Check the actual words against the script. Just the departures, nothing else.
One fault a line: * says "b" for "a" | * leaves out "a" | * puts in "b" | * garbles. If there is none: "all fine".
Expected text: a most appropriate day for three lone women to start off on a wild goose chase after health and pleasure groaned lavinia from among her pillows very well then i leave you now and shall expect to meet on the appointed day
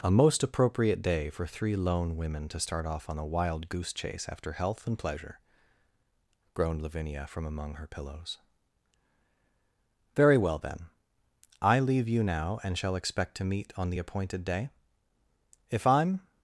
* puts in "if i'm"